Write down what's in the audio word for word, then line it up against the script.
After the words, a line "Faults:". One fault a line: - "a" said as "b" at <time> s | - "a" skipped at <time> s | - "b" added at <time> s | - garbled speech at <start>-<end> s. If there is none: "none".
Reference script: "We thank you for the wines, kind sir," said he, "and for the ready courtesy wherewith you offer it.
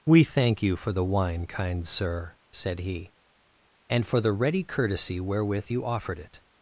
"We thank you for the wine, kind sir," said he, "and for the ready courtesy wherewith you offered it.
Faults:
- "wines" said as "wine" at 1.0 s
- "offer" said as "offered" at 5.8 s